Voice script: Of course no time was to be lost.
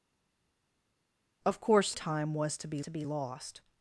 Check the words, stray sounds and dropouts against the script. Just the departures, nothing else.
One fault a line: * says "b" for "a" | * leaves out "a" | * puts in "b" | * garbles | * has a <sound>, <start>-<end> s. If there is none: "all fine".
* leaves out "no"
* puts in "to be"